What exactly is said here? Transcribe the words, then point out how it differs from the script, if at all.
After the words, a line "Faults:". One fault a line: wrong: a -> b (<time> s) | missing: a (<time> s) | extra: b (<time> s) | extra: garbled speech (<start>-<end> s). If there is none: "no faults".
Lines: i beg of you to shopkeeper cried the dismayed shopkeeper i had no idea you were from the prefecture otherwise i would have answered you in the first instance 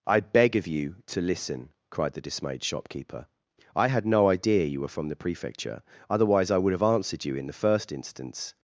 i beg of you to listen cried the dismayed shopkeeper i had no idea you were from the prefecture otherwise i would have answered you in the first instance
Faults:
wrong: shopkeeper -> listen (1.2 s)